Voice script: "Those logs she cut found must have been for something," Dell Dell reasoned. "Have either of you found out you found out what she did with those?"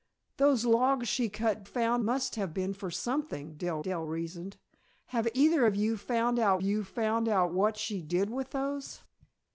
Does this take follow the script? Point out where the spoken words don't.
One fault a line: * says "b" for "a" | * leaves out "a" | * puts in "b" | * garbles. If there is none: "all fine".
all fine